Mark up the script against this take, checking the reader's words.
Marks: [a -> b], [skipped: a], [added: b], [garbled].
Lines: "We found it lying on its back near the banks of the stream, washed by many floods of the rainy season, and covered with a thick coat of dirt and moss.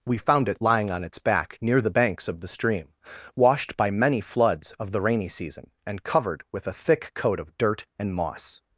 "We found it lying on its back near the banks of the stream, washed by many floods of the rainy season, and covered with a thick coat of dirt and moss.